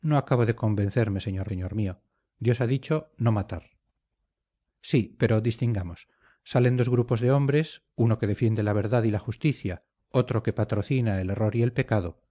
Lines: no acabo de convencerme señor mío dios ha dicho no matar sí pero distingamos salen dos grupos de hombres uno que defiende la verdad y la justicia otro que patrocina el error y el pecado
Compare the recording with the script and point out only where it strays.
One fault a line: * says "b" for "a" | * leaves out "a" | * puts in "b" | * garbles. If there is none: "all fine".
* puts in "señor"